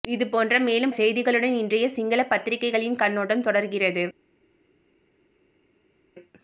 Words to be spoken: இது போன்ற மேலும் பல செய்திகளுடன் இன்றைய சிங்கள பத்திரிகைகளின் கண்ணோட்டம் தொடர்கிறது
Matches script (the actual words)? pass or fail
fail